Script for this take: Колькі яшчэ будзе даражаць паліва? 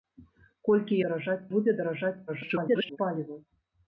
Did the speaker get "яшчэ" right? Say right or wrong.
wrong